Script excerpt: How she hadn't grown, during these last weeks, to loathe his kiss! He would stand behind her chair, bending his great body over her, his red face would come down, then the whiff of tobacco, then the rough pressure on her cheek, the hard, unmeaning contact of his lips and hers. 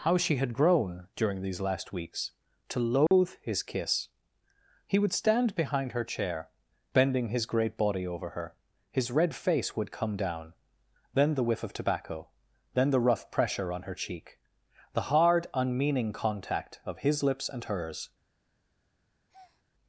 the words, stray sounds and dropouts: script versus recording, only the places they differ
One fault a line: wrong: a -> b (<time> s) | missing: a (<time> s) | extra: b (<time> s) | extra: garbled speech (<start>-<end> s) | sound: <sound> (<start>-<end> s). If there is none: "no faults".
wrong: hadn't -> had (0.4 s)
sound: dropout (3.1-3.1 s)
sound: breath (19.3-19.6 s)